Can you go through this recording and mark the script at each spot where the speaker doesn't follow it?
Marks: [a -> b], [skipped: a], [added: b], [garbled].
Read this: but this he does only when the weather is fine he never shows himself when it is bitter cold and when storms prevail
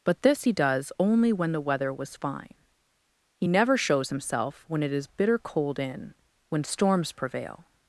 but this he does only when the weather [is -> was] fine he never shows himself when it is bitter cold [and -> in] when storms prevail